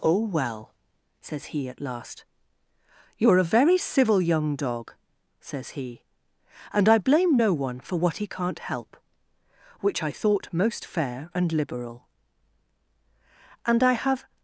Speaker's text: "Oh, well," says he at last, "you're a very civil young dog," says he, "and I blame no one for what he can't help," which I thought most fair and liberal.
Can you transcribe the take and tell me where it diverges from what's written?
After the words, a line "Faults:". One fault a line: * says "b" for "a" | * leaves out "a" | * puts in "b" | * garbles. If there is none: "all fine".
"Oh, well," says he at last, "you're a very civil young dog," says he, "and I blame no one for what he can't help," which I thought most fair and liberal. "And I have
Faults:
* puts in "And I have"